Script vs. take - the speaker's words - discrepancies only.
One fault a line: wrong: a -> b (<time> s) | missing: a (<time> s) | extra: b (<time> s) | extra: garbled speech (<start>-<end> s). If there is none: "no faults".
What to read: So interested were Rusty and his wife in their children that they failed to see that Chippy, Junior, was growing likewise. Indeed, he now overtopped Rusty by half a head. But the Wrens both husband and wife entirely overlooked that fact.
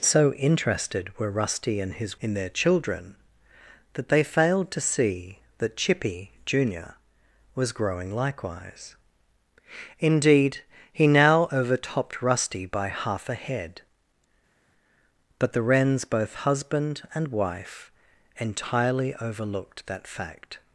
missing: wife (2.2 s)